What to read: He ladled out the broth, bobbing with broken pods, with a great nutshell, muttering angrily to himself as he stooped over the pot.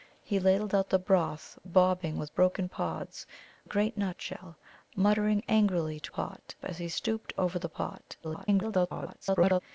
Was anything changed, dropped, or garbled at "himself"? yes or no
yes